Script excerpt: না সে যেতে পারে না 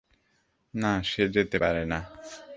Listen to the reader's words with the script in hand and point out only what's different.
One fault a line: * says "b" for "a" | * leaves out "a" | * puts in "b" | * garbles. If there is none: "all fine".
all fine